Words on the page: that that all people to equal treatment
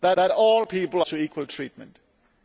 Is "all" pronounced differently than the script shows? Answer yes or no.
no